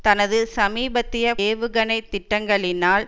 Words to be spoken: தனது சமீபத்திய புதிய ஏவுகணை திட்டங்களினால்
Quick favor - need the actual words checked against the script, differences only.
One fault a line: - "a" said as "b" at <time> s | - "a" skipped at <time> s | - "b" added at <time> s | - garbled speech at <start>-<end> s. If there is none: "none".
- "புதிய" skipped at 1.3 s